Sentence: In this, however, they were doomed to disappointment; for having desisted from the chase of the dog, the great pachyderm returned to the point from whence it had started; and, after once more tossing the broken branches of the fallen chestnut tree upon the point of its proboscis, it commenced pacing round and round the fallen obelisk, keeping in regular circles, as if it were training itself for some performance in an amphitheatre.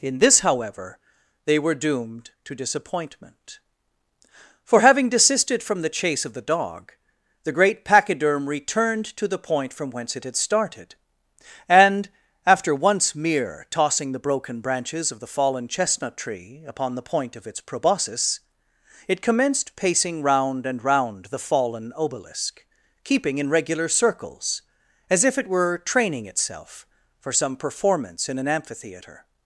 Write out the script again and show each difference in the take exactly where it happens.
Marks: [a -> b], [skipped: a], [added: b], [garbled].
In this, however, they were doomed to disappointment; for having desisted from the chase of the dog, the great pachyderm returned to the point from whence it had started; and, after once [more -> mere] tossing the broken branches of the fallen chestnut tree upon the point of its proboscis, it commenced pacing round and round the fallen obelisk, keeping in regular circles, as if it were training itself for some performance in an amphitheatre.